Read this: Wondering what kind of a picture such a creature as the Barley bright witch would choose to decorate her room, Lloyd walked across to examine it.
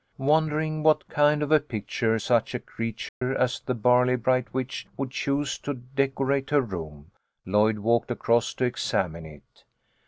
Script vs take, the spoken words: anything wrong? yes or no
no